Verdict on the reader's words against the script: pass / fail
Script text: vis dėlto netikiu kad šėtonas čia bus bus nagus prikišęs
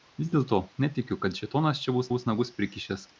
pass